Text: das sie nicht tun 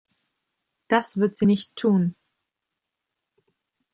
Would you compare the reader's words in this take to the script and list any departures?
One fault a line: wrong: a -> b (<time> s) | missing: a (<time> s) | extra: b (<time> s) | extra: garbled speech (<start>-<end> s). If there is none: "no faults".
extra: wird (1.2 s)